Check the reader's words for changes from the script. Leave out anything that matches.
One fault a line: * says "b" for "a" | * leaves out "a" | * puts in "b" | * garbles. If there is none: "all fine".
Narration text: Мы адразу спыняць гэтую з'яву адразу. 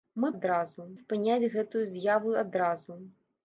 all fine